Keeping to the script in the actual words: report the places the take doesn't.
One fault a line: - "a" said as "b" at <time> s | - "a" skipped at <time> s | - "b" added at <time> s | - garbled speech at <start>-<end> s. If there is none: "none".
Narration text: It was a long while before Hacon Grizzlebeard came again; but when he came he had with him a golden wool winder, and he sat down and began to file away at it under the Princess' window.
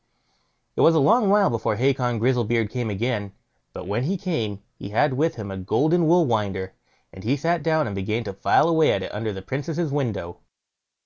none